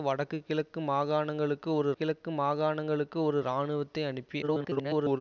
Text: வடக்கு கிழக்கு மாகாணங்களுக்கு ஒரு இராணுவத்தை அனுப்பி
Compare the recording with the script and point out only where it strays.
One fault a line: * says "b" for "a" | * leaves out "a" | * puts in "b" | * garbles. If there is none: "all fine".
* puts in "கிழக்கு மாகாணங்களுக்கு ஒரு"
* garbles